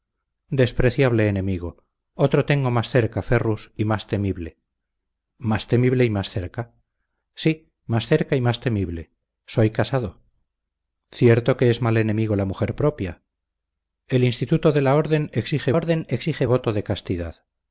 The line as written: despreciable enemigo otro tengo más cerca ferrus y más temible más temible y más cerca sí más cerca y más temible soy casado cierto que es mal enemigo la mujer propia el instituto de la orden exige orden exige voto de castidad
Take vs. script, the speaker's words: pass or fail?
pass